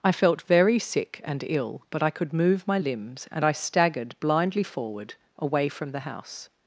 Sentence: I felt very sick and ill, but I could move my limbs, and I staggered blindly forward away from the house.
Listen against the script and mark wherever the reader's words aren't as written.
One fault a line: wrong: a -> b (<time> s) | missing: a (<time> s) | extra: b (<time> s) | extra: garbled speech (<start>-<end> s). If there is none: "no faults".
no faults